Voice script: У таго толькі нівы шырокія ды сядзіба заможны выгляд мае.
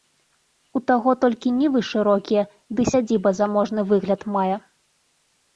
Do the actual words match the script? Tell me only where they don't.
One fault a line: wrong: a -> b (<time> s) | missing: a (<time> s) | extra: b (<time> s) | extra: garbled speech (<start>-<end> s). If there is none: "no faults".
no faults